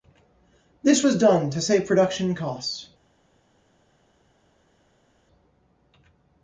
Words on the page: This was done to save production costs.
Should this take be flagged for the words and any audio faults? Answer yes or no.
no